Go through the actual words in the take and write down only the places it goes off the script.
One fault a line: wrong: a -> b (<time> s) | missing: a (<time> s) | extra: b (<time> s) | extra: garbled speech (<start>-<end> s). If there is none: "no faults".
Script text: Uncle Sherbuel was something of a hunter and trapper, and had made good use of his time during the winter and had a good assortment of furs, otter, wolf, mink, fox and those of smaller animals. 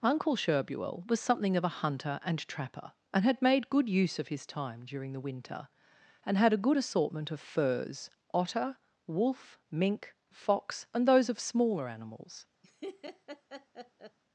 no faults